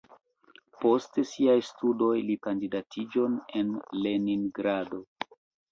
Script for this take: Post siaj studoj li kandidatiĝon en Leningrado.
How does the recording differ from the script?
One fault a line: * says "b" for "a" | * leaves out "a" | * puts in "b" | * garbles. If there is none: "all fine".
all fine